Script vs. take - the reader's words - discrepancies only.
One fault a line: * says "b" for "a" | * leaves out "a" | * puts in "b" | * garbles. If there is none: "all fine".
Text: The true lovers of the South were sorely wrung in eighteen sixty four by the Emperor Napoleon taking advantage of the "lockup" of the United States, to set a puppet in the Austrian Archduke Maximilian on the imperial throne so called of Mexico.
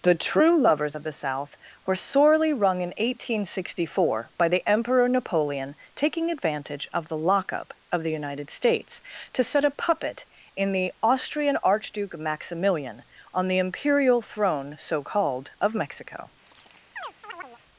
all fine